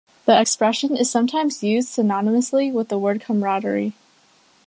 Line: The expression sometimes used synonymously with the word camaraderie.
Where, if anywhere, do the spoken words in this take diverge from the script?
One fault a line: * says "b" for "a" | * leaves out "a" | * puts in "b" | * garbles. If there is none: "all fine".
* puts in "is"